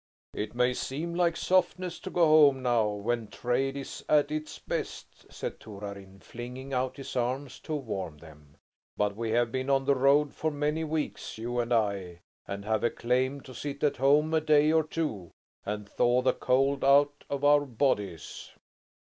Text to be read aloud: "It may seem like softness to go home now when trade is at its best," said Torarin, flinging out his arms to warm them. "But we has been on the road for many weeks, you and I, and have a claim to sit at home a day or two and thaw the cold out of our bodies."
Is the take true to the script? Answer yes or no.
no